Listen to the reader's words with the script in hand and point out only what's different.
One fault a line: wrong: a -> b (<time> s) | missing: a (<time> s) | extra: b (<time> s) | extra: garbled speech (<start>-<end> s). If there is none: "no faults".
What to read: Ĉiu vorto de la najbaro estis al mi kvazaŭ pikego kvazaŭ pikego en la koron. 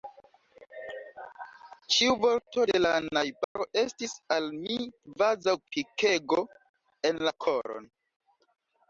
missing: kvazaŭ pikego (6.4 s)